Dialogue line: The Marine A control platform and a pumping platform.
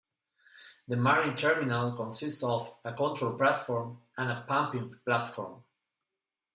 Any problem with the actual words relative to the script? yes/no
yes